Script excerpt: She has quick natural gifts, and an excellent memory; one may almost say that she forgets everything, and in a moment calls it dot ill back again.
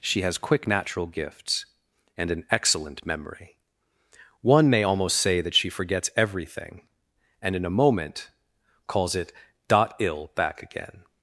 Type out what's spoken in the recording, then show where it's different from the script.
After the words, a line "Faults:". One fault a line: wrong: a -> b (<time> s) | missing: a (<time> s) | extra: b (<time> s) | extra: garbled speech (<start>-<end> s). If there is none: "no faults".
She has quick natural gifts, and an excellent memory; one may almost say that she forgets everything, and in a moment calls it dot ill back again.
Faults:
no faults